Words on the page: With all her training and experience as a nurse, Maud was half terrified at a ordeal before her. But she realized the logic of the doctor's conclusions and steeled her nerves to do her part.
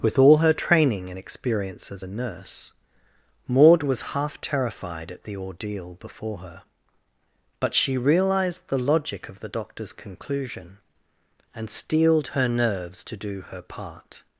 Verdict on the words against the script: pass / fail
fail